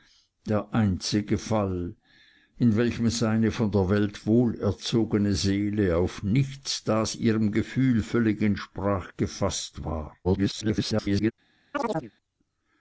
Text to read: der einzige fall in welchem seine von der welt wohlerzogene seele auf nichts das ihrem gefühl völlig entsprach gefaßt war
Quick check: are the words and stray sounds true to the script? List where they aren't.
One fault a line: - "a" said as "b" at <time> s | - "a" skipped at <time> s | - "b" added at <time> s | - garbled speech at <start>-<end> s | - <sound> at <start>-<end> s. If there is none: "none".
- garbled speech at 10.2-11.3 s
- chirp at 11.7-12.1 s